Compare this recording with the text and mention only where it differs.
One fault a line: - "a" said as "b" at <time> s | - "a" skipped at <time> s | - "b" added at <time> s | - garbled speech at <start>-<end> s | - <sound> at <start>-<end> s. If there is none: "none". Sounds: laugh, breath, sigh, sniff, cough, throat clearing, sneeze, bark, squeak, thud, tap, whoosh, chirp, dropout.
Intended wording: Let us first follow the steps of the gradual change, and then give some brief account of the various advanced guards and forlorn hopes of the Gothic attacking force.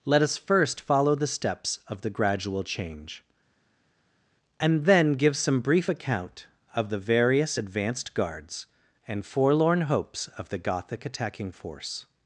none